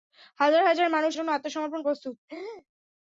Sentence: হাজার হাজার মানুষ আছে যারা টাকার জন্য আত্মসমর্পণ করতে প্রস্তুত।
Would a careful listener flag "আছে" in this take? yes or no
yes